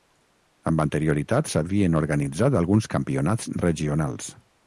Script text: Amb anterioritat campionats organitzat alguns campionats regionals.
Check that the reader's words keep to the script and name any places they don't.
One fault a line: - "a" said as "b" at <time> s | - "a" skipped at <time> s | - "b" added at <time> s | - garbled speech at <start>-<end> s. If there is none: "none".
- "campionats" said as "s'havien" at 1.5 s